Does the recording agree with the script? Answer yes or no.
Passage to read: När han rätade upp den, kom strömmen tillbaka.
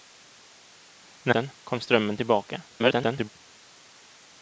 no